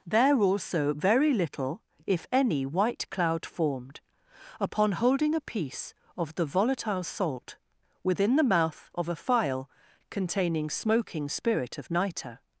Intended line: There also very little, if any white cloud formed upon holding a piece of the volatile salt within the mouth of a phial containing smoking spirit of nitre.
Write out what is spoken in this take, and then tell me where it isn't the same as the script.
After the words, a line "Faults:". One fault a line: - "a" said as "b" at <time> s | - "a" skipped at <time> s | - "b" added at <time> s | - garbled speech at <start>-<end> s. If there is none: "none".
There also very little, if any white cloud formed upon holding a piece of the volatile salt within the mouth of a phial containing smoking spirit of nitre.
Faults:
none